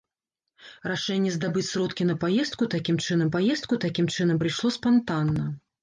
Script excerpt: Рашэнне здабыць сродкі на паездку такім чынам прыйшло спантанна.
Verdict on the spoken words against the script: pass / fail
fail